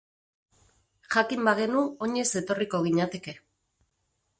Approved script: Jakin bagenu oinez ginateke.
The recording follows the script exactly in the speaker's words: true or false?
false